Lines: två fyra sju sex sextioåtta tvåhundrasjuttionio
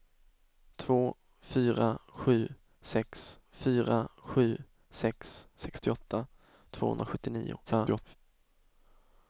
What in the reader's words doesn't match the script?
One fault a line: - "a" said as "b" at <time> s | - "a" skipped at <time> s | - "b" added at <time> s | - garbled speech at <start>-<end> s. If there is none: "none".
- "fyra sju sex" added at 3.5 s
- garbled speech at 7.7-8.2 s